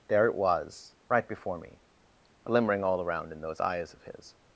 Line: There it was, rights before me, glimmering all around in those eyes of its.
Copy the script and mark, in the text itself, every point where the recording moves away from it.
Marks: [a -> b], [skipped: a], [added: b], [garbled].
There it was, [rights -> right] before me, glimmering all around in those eyes of [its. -> his]